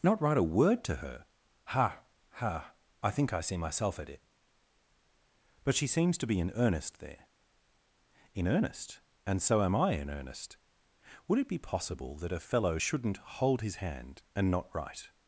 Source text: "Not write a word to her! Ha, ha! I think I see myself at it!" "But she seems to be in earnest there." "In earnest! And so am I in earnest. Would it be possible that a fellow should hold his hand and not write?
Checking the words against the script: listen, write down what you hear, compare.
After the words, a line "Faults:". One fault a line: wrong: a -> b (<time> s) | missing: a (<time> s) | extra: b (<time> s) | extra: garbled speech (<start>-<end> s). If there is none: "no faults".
"Not write a word to her! Ha, ha! I think I see myself at it!" "But she seems to be in earnest there." "In earnest! And so am I in earnest. Would it be possible that a fellow shouldn't hold his hand and not write?
Faults:
wrong: should -> shouldn't (12.8 s)